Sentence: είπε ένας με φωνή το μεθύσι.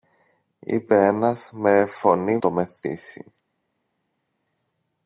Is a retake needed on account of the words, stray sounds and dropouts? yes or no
no